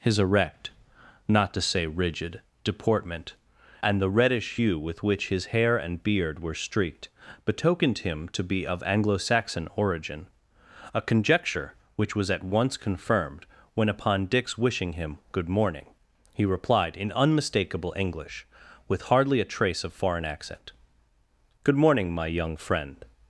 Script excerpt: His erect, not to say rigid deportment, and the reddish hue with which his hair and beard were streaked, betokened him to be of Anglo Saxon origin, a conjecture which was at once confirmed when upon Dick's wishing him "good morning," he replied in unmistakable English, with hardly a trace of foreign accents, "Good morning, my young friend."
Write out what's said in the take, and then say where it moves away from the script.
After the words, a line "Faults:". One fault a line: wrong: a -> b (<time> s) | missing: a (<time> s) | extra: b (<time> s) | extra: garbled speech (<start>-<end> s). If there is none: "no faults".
His erect, not to say rigid deportment, and the reddish hue with which his hair and beard were streaked, betokened him to be of Anglo Saxon origin, a conjecture which was at once confirmed when upon Dick's wishing him "good morning," he replied in unmistakable English, with hardly a trace of foreign accent, "Good morning, my young friend."
Faults:
wrong: accents -> accent (20.3 s)